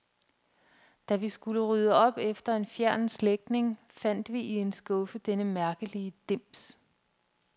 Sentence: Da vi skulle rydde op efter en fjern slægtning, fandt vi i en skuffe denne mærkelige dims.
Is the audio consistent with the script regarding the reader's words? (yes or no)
yes